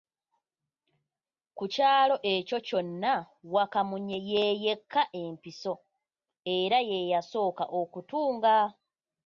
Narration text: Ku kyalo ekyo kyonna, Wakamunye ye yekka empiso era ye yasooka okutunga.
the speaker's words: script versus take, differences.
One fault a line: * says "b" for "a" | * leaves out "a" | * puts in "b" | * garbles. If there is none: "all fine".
all fine